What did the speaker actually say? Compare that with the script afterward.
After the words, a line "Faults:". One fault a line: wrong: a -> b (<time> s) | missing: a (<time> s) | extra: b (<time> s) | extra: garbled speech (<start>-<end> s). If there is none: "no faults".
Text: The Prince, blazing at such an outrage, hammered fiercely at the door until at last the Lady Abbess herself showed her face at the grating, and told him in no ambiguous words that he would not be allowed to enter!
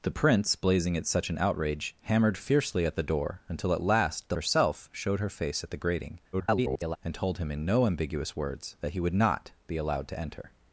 The Prince, blazing at such an outrage, hammered fiercely at the door until at last the Herself showed her face at the grating, [garbled] and told him in no ambiguous words that he would not be allowed to enter!
Faults:
missing: Lady Abbess (4.4 s)
extra: garbled speech (6.3-7.0 s)